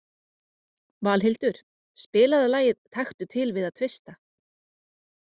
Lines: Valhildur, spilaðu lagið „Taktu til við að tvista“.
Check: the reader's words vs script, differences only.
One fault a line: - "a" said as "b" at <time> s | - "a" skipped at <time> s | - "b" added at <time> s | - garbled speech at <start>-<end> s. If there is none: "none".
none